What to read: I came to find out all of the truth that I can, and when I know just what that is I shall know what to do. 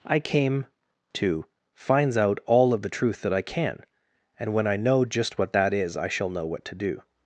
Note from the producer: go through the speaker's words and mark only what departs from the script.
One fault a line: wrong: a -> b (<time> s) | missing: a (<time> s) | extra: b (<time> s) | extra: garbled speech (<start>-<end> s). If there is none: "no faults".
wrong: find -> finds (1.7 s)